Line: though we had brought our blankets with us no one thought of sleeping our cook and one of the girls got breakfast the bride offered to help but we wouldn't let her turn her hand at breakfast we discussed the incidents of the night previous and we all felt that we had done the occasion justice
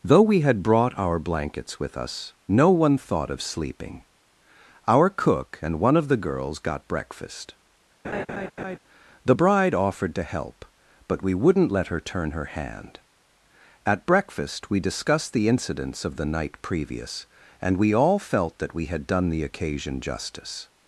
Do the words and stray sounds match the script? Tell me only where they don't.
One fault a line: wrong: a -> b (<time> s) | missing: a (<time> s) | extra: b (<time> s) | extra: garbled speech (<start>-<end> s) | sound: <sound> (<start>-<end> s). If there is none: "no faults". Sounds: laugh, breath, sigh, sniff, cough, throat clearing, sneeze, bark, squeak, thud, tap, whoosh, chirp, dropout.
sound: laugh (8.0-8.8 s)